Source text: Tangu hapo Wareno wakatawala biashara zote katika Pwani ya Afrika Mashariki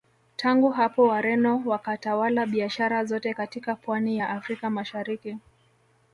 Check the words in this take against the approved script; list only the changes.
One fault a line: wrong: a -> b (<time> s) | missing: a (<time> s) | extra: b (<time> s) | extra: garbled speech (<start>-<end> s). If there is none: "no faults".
no faults